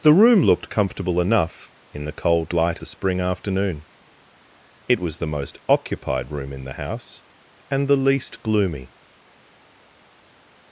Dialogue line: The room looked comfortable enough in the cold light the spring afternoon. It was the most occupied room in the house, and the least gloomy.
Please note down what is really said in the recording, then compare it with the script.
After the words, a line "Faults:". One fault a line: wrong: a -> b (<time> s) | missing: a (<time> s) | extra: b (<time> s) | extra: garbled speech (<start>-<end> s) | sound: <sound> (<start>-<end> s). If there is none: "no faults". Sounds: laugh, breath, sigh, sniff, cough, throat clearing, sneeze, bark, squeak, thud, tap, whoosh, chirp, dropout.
The room looked comfortable enough in the cold light the spring afternoon. It was the most occupied room in the house, and the least gloomy.
Faults:
no faults